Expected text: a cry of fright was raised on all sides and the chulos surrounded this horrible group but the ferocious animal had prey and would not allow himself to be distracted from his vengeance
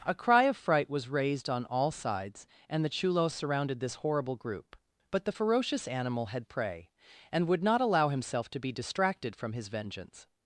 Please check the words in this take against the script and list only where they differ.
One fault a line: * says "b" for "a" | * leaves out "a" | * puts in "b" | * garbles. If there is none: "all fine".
all fine